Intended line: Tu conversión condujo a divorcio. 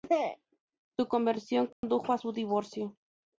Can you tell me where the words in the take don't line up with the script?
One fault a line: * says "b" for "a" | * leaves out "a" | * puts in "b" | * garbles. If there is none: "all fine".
* says "Su" for "Tu"
* puts in "su"